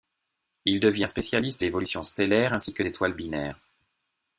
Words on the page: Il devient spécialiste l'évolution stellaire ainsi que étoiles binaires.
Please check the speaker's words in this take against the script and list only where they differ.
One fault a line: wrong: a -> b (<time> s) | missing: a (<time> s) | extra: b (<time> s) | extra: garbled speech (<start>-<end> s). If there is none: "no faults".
no faults